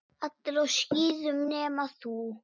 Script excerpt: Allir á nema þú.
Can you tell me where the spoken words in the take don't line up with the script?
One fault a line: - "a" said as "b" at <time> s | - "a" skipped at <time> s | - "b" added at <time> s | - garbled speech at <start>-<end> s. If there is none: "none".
- "skíðum" added at 0.8 s